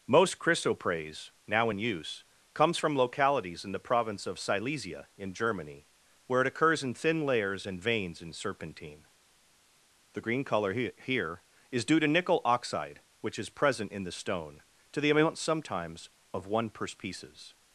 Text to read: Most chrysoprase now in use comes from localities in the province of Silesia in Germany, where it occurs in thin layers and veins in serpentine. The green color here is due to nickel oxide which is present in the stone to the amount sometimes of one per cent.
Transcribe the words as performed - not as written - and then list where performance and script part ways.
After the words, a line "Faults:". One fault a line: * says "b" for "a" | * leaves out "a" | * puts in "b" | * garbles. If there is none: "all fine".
Most chrysoprase now in use comes from localities in the province of Silesia in Germany, where it occurs in thin layers and veins in serpentine. The green color he here is due to nickel oxide which is present in the stone to the amount sometimes of one per pieces.
Faults:
* puts in "he"
* says "pieces" for "cent"